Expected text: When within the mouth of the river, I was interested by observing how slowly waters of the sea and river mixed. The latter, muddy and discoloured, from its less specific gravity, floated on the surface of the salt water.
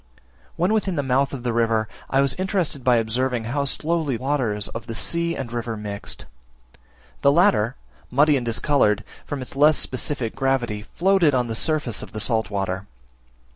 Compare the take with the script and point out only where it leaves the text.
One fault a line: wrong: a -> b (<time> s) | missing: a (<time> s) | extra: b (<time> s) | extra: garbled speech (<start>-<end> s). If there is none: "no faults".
no faults